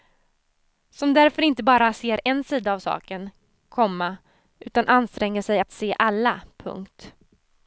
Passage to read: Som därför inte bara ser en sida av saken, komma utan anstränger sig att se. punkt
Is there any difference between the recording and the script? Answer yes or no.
yes